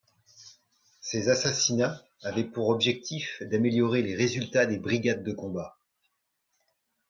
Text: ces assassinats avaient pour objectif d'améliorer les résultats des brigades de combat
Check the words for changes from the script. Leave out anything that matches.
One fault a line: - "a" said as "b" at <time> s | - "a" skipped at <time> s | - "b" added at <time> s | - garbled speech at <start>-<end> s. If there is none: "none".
none